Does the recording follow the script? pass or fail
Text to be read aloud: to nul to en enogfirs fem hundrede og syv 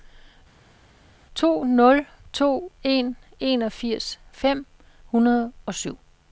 pass